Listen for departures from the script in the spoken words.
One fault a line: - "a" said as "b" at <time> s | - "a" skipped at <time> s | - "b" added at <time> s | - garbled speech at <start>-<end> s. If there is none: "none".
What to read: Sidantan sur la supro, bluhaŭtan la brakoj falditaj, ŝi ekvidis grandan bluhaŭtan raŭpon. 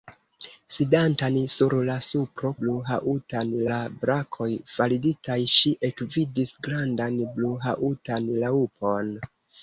none